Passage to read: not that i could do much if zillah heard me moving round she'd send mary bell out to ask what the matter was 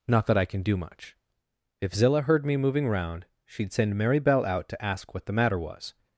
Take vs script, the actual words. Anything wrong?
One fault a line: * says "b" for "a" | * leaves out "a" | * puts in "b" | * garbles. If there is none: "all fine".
* says "can" for "could"